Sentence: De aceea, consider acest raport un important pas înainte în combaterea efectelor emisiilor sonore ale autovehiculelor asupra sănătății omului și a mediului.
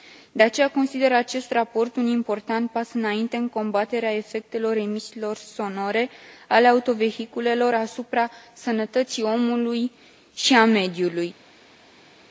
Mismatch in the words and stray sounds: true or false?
false